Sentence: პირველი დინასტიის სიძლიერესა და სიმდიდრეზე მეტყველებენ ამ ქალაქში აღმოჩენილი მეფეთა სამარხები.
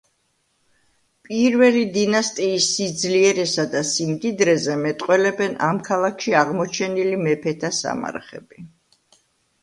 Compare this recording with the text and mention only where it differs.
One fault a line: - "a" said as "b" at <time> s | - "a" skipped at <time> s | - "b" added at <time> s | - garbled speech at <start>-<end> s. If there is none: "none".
none